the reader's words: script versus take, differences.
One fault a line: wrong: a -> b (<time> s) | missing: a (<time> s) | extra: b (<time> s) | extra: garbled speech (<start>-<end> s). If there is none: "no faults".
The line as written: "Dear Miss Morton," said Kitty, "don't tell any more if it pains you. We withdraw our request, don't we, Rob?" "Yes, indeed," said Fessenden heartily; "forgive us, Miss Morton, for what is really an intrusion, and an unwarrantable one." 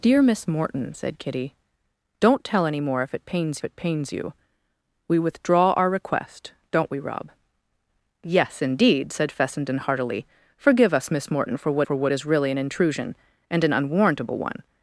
extra: it pains (3.6 s)
extra: for what (11.8 s)